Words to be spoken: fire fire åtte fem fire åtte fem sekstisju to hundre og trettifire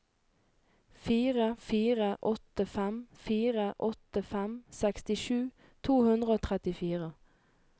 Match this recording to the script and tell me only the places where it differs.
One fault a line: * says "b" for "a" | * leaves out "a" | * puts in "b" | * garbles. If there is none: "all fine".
all fine